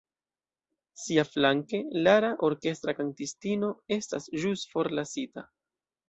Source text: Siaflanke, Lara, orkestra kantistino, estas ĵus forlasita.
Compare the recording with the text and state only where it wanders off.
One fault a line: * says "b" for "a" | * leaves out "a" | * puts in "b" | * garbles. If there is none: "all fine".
all fine